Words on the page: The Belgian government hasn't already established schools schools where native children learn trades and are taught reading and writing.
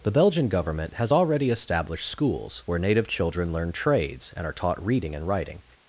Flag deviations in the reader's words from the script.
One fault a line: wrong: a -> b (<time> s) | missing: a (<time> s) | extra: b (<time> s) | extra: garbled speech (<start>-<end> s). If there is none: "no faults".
wrong: hasn't -> has (0.9 s)
missing: schools (2.6 s)